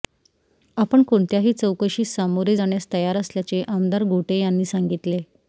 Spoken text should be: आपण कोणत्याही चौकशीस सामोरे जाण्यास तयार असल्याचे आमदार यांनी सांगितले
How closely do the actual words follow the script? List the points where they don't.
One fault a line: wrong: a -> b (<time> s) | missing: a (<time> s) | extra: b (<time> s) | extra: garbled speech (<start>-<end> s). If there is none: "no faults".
extra: गोटे (4.0 s)